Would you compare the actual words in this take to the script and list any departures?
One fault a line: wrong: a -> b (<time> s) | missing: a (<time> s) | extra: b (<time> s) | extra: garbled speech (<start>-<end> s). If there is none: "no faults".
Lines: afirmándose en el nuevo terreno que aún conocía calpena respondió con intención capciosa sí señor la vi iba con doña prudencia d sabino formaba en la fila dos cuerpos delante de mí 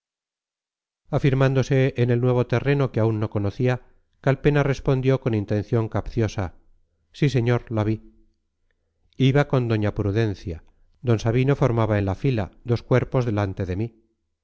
extra: no (3.2 s)